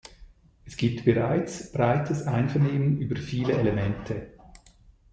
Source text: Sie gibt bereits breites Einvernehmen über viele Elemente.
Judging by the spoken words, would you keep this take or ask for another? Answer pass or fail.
fail